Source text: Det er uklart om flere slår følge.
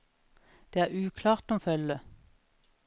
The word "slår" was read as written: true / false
false